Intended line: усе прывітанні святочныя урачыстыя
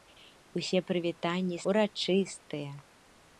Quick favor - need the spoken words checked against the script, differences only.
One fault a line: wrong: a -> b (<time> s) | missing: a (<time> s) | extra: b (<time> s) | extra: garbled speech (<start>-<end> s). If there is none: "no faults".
missing: святочныя (1.6 s)